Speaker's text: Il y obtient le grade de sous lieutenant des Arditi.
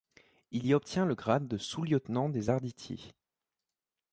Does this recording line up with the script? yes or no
yes